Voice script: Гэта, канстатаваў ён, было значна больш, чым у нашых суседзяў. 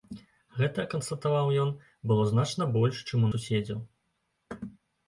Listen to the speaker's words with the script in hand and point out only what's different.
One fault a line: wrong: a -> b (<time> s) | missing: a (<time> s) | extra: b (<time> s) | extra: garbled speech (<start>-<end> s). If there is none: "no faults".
missing: нашых (3.3 s)